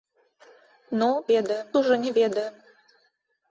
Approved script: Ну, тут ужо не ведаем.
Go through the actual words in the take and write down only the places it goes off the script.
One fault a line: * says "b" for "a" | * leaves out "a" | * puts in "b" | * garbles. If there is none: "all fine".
* says "ведаем" for "тут"